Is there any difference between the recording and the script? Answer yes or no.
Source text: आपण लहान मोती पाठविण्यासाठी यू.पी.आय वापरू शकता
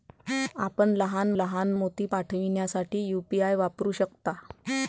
yes